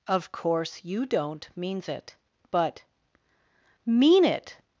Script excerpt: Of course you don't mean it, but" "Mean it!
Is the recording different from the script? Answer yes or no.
yes